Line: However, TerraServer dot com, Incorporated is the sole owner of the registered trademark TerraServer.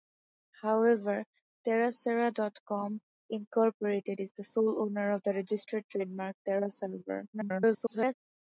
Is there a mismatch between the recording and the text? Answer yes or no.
yes